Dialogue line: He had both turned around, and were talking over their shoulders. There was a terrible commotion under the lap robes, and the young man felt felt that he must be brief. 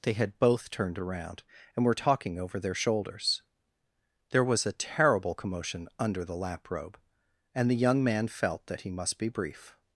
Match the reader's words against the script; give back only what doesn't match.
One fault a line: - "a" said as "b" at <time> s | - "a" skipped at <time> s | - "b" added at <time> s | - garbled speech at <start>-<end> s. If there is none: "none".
- "He" said as "They" at 0.0 s
- "robes" said as "robe" at 6.7 s
- "felt" skipped at 8.7 s